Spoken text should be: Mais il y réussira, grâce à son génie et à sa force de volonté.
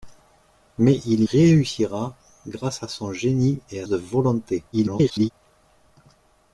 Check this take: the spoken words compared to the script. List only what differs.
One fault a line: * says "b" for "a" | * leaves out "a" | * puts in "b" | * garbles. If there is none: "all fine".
* leaves out "y"
* leaves out "sa force"
* garbles